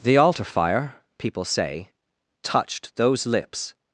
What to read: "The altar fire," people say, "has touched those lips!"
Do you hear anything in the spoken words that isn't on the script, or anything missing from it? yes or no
yes